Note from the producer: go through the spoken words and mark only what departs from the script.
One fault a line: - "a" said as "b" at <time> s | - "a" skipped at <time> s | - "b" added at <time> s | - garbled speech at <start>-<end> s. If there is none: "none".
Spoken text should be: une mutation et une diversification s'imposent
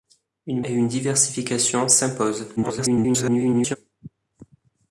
- "mutation" skipped at 0.6 s
- garbled speech at 2.6-3.8 s